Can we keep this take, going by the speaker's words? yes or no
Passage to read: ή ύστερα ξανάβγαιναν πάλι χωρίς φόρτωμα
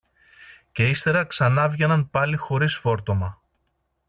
no